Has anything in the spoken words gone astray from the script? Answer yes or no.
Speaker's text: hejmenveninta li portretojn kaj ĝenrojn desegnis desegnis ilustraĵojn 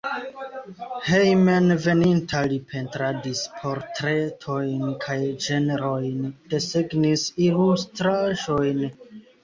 yes